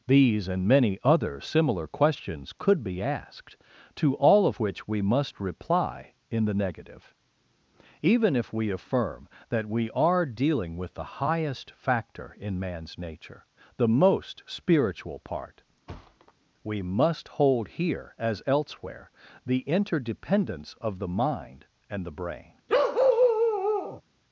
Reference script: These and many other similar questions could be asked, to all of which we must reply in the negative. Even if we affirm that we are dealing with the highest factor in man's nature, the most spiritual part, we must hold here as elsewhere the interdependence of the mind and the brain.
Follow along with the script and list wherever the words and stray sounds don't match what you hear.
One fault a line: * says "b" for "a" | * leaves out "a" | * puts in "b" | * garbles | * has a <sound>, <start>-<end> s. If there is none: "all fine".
* has a thud, 15.9-16.3 s
* has a bark, 22.7-24.0 s